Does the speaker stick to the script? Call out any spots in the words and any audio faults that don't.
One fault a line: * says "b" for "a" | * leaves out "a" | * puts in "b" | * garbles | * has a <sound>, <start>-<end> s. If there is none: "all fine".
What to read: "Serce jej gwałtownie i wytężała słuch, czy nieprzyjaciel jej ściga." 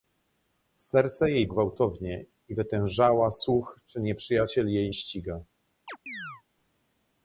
* has a chirp, 5.9-6.4 s